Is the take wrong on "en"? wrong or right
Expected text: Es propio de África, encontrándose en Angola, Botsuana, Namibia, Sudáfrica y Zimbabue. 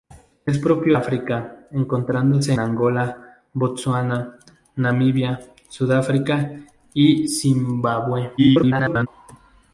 wrong